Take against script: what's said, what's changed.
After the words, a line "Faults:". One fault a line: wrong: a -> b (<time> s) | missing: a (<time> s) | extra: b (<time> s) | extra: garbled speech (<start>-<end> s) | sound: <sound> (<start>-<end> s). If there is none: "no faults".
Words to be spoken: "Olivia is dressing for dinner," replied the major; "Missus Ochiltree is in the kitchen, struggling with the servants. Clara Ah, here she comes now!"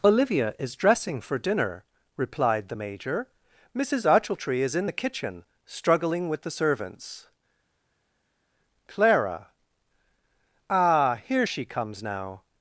"Olivia is dressing for dinner," replied the major; "Missus Ochiltree is in the kitchen, struggling with the servants. Clara Ah, here she comes now!"
Faults:
no faults